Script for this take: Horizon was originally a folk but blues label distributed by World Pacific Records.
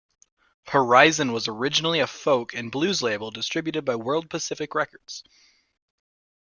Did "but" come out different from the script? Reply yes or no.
yes